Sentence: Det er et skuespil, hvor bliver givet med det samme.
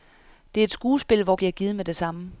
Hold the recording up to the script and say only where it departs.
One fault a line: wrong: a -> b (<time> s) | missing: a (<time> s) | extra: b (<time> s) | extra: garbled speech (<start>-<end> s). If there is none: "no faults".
no faults